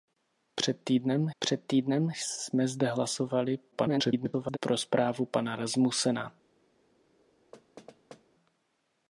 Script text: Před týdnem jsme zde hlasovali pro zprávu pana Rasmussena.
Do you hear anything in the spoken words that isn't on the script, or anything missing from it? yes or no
yes